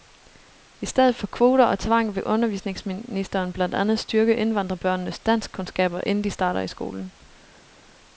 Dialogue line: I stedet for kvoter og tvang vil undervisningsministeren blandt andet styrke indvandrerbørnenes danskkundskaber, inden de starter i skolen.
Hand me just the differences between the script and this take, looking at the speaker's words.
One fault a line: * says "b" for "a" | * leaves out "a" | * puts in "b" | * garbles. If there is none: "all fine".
all fine